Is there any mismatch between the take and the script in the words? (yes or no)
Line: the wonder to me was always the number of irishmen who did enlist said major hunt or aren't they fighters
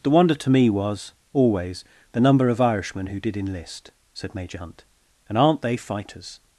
yes